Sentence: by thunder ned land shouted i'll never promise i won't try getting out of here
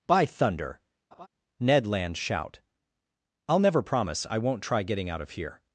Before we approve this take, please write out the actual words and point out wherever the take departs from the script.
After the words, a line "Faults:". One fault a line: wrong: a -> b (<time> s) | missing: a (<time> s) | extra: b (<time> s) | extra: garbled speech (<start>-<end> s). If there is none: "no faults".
by thunder ned land shout i'll never promise i won't try getting out of here
Faults:
wrong: shouted -> shout (2.2 s)